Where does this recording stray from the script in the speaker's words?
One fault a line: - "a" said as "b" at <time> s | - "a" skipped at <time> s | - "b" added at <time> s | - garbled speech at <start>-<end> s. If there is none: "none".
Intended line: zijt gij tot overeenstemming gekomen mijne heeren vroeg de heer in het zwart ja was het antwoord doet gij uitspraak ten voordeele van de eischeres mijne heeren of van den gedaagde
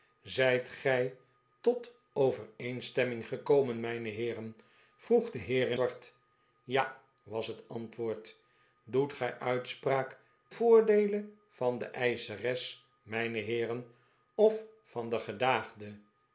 - "het" skipped at 5.8 s
- "ten" skipped at 10.2 s